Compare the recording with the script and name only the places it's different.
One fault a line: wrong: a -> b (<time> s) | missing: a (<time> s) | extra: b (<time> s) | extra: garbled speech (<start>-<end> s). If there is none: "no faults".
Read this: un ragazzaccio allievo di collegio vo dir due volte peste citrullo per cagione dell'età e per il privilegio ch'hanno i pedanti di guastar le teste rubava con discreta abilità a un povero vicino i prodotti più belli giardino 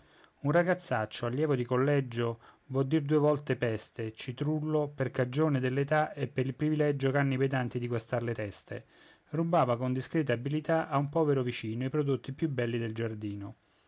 extra: del (12.8 s)